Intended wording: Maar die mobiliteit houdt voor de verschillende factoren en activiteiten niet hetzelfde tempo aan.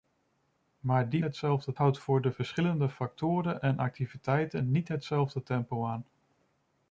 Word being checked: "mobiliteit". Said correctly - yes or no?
no